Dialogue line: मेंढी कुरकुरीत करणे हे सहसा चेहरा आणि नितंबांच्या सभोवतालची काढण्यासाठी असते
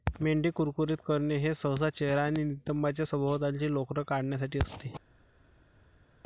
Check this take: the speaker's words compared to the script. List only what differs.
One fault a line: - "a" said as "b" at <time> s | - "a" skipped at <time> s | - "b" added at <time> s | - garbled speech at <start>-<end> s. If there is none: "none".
- "लोकर" added at 3.7 s